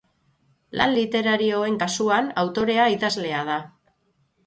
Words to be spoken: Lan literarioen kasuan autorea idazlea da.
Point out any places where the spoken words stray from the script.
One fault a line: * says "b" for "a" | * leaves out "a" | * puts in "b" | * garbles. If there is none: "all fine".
all fine